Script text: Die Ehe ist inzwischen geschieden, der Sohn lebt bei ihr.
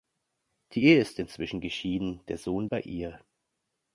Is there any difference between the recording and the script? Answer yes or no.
yes